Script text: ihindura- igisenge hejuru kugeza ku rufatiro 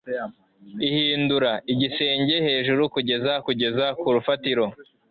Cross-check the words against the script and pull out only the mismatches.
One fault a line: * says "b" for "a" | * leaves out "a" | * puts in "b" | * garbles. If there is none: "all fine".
* puts in "kugeza"